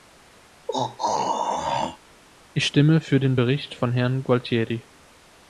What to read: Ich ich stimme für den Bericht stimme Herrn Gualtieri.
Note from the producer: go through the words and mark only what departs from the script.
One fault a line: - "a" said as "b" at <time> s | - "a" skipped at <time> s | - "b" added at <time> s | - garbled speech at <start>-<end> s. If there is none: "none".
- "ich" skipped at 2.6 s
- "stimme" said as "von" at 3.7 s